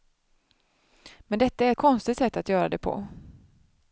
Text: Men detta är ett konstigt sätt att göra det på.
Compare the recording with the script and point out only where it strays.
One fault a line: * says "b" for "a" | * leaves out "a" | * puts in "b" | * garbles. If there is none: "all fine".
* leaves out "ett"